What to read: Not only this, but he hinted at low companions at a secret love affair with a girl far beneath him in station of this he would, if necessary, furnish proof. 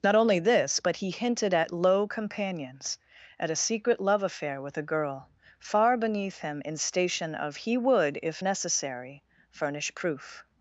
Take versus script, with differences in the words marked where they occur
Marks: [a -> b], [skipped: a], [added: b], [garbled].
Not only this, but he hinted at low companions at a secret love affair with a girl far beneath him in station of [skipped: this] he would, if necessary, furnish proof.